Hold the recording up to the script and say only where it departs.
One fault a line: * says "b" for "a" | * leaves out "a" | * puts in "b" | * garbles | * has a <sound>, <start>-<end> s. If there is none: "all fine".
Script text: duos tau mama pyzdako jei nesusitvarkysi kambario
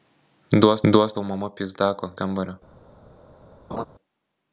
* puts in "duos"
* leaves out "jei nesusitvarkysi"
* has a laugh, 3.7-3.9 s